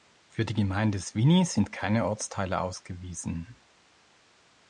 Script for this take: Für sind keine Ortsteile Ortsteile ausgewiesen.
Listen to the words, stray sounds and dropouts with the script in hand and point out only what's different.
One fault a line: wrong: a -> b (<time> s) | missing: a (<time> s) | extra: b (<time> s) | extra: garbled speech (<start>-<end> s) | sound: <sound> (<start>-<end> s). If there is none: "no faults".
extra: die Gemeinde Sviny (0.5 s)
missing: Ortsteile (2.6 s)